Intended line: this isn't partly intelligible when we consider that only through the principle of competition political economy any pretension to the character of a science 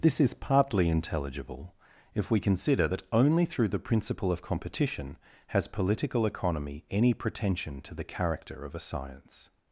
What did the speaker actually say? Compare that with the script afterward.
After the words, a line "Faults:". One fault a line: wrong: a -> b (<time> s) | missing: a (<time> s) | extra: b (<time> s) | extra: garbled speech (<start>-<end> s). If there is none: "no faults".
this is partly intelligible if we consider that only through the principle of competition has political economy any pretension to the character of a science
Faults:
wrong: isn't -> is (0.2 s)
wrong: when -> if (2.1 s)
extra: has (5.5 s)